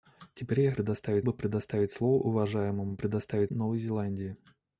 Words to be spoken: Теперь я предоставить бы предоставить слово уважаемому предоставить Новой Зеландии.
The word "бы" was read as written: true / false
true